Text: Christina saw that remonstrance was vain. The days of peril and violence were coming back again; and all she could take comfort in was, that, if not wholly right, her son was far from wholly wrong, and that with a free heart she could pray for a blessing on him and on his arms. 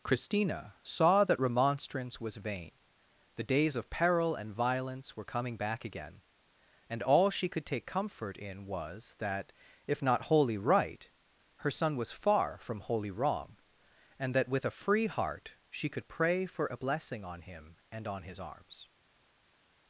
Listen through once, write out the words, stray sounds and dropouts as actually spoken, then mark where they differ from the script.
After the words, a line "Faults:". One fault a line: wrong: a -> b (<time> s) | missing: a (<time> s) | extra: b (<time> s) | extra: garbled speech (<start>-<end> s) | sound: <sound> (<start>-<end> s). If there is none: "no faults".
Christina saw that remonstrance was vain. The days of peril and violence were coming back again; and all she could take comfort in was, that, if not wholly right, her son was far from wholly wrong, and that with a free heart she could pray for a blessing on him and on his arms.
Faults:
no faults